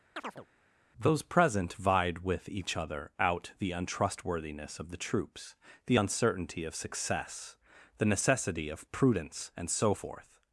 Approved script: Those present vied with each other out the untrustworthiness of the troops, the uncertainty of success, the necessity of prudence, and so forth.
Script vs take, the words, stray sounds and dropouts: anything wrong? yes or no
yes